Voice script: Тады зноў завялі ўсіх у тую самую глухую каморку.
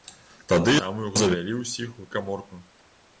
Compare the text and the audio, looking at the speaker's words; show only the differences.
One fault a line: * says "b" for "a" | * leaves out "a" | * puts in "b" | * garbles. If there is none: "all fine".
* says "самую" for "зноў"
* leaves out "тую самую глухую"